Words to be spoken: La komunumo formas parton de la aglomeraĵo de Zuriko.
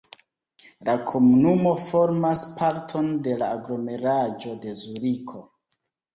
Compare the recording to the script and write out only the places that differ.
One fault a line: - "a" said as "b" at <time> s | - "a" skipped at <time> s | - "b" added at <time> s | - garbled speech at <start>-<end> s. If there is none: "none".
none